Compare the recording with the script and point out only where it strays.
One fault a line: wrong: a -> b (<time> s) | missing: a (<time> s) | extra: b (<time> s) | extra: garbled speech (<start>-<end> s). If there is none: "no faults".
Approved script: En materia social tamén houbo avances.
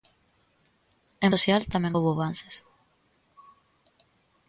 missing: materia (1.3 s)